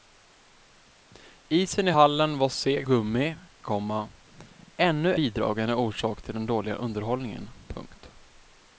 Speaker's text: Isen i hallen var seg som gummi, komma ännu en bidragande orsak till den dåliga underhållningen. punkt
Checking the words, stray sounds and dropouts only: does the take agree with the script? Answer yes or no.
no